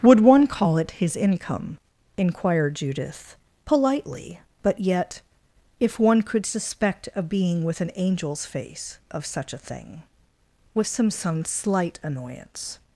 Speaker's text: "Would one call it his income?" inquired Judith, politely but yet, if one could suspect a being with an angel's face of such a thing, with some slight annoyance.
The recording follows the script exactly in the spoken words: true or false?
false